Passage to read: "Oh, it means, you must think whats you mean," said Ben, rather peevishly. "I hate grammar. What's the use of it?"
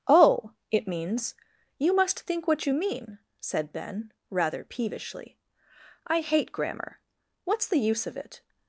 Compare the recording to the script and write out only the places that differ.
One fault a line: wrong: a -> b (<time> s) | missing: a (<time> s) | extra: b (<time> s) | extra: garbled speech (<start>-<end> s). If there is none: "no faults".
wrong: whats -> what (2.5 s)